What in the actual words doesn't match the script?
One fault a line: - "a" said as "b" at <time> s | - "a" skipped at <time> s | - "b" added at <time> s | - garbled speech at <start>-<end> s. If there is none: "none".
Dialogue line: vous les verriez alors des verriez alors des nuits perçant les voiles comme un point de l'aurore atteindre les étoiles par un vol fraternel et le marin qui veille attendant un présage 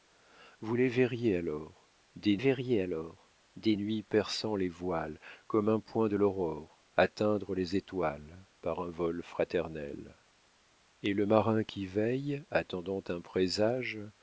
none